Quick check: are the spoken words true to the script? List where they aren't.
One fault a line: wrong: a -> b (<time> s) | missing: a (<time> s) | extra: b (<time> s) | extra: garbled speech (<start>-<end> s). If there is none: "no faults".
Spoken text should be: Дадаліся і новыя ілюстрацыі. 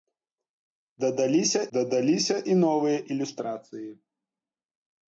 extra: дадаліся (1.8 s)